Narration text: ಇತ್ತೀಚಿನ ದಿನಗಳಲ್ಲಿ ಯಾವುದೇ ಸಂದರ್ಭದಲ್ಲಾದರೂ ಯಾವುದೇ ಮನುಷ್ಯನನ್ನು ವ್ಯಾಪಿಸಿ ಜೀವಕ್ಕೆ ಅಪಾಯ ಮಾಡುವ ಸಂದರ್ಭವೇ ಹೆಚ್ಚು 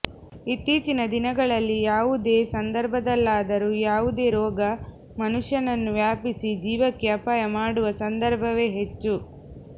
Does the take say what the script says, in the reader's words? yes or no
no